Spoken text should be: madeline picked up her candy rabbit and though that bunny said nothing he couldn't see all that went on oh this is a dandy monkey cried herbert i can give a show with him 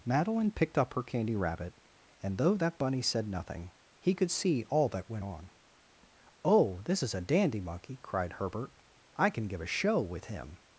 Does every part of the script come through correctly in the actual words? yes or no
no